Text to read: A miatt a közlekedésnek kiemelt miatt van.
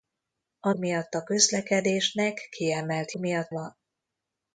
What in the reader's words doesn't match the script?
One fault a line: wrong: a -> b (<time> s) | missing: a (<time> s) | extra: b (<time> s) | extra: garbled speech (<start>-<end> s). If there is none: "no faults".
no faults